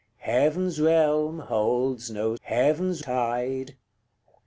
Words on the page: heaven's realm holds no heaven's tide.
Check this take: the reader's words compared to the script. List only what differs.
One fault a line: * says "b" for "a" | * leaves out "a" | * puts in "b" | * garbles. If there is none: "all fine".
all fine